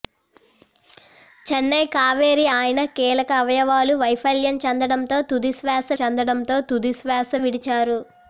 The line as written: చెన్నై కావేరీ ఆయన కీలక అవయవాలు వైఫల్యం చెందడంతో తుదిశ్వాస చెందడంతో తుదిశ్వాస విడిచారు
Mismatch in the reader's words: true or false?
false